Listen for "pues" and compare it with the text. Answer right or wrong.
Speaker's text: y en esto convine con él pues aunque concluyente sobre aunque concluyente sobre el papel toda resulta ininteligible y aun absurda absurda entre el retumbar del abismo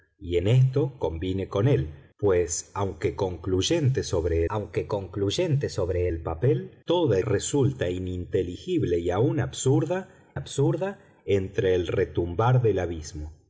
right